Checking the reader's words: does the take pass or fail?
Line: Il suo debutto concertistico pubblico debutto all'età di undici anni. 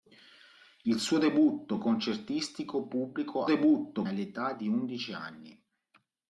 pass